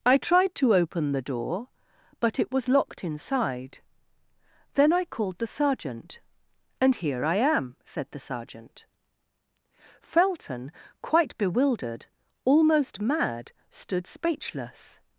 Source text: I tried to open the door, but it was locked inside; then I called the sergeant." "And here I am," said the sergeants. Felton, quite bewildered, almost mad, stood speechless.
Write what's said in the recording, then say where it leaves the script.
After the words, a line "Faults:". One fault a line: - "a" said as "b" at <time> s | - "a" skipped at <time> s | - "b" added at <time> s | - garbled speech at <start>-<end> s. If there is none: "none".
I tried to open the door, but it was locked inside; then I called the sergeant." "And here I am," said the sergeant. Felton, quite bewildered, almost mad, stood speechless.
Faults:
- "sergeants" said as "sergeant" at 8.2 s